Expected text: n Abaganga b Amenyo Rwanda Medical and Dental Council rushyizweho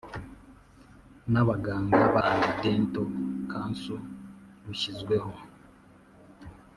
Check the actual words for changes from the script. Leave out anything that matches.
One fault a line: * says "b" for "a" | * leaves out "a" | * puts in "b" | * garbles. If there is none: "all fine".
* leaves out "Amenyo Rwanda Medical"